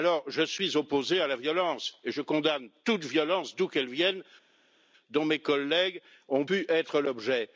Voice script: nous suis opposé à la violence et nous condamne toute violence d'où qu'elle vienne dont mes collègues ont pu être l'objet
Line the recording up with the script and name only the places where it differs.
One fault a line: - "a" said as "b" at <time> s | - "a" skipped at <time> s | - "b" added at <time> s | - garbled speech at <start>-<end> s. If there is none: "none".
- "nous" said as "je" at 0.3 s
- "nous" said as "je" at 2.1 s